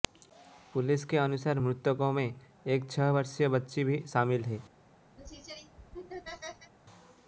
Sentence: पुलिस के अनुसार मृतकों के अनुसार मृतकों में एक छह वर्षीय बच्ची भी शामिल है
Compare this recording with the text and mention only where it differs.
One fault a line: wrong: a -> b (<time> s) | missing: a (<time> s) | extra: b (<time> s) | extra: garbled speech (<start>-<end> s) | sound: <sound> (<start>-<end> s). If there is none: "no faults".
missing: के अनुसार मृतकों (2.1 s)
sound: laugh (5.2-6.7 s)